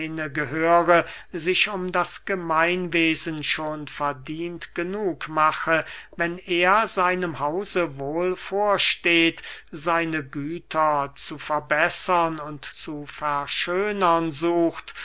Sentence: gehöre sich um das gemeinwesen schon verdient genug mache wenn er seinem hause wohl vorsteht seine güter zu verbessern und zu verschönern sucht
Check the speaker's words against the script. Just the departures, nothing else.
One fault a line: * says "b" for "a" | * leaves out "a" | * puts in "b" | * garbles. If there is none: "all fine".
all fine